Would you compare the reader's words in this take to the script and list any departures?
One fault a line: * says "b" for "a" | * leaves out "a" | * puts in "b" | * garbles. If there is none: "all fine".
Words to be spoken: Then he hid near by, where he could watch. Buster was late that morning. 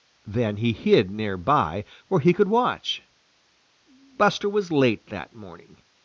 all fine